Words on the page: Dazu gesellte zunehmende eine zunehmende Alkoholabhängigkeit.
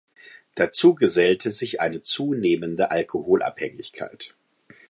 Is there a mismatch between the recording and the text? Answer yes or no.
yes